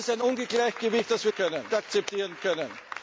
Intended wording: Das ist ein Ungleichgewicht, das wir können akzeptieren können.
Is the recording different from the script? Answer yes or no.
no